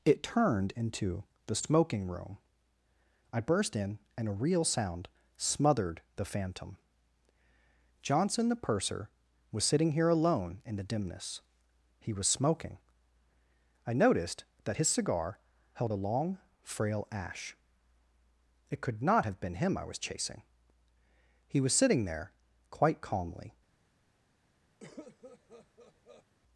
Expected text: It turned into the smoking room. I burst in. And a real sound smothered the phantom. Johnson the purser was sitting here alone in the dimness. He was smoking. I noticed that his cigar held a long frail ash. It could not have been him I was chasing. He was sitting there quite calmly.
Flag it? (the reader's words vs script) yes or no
no